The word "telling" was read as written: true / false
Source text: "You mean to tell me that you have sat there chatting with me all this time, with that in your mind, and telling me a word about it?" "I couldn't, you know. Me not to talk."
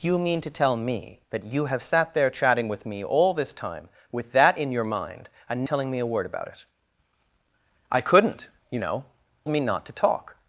true